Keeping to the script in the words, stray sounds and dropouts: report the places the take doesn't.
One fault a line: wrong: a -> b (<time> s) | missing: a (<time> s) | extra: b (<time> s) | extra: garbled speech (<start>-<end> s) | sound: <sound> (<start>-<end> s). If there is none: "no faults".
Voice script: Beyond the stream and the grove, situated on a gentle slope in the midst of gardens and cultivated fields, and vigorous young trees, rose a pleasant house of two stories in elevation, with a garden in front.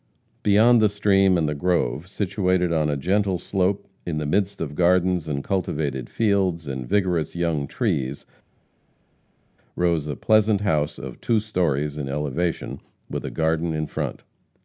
no faults